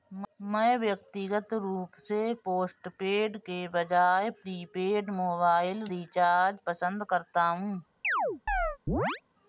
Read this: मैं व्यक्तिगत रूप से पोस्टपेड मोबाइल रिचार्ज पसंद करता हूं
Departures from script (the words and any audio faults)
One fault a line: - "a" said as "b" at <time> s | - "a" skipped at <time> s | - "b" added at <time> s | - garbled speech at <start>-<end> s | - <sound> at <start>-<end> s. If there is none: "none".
- "के बजाय प्रीपेड" added at 3.4 s
- chirp at 8.0-9.2 s